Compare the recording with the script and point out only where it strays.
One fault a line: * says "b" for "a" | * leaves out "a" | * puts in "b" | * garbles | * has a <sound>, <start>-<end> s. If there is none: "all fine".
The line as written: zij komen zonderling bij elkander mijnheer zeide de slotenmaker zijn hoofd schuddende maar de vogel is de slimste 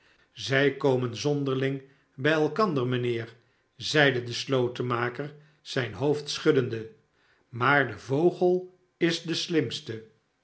all fine